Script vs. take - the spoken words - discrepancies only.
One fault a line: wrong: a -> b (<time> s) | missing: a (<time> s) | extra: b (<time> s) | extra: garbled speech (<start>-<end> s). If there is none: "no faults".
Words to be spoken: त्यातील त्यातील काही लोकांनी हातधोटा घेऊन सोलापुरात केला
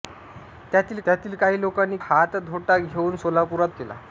no faults